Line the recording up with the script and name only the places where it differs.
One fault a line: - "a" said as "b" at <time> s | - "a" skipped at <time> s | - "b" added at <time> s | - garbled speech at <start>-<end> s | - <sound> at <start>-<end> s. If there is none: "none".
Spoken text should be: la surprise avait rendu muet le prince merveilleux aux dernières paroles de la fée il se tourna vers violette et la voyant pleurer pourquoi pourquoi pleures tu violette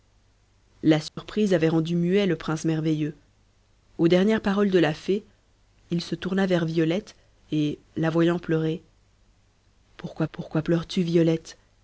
- dropout at 1.1-1.2 s